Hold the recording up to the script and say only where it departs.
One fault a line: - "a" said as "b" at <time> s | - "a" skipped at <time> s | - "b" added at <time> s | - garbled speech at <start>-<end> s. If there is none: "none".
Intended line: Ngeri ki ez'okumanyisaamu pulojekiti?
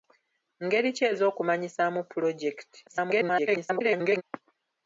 - garbled speech at 2.9-4.2 s